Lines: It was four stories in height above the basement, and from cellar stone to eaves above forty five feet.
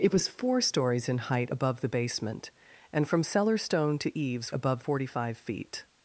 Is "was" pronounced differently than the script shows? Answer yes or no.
no